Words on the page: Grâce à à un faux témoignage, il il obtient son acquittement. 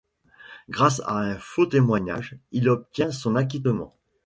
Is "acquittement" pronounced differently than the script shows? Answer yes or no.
no